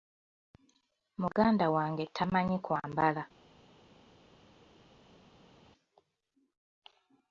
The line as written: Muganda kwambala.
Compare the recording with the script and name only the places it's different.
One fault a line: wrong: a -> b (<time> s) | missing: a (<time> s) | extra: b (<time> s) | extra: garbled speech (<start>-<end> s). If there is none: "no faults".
extra: wange tamanyi (1.8 s)